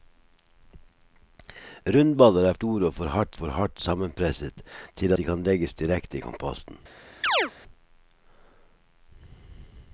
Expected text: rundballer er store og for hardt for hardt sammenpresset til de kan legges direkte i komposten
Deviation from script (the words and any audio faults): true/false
true